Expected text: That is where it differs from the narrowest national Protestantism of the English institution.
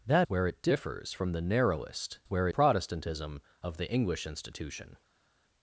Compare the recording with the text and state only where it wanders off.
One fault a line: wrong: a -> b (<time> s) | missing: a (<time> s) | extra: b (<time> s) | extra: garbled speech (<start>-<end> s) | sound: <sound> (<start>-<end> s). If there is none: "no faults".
missing: is (0.3 s)
wrong: national -> where (2.2 s)